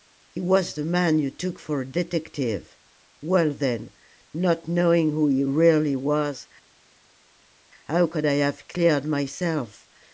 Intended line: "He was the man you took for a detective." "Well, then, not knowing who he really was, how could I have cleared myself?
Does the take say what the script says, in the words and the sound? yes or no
yes